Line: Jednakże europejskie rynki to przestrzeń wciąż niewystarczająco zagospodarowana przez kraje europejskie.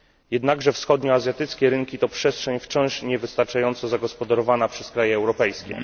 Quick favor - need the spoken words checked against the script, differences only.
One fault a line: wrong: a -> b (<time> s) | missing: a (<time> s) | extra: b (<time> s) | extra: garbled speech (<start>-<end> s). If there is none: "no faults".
wrong: europejskie -> wschodnioazjatyckie (0.7 s)